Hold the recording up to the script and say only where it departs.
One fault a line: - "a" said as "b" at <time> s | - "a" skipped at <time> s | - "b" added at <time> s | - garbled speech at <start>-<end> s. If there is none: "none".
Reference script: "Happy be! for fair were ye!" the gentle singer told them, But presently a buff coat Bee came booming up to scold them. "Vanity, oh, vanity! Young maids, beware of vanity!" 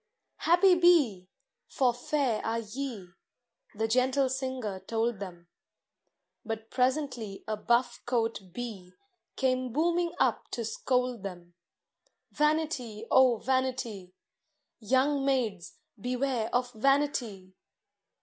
- "were" said as "are" at 2.4 s